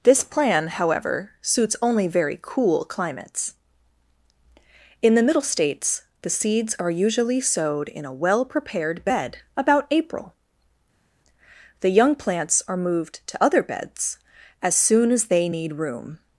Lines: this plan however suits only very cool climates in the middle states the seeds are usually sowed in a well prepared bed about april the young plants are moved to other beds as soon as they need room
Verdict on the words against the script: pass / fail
pass